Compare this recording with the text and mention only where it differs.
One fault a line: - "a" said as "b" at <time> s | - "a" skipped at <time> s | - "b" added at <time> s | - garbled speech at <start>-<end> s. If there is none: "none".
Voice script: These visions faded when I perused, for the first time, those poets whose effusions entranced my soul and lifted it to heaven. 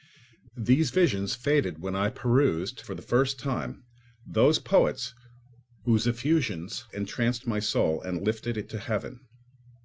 none